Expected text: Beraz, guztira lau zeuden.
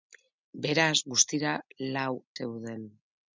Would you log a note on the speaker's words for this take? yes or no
no